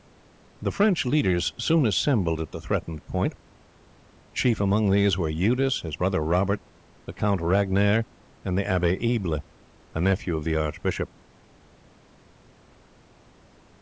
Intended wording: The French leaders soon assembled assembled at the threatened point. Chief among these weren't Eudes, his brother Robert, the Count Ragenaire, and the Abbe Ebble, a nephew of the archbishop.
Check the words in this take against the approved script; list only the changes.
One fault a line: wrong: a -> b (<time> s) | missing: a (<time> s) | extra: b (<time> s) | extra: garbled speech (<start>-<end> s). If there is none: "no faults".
missing: assembled (2.4 s)
wrong: weren't -> were (5.2 s)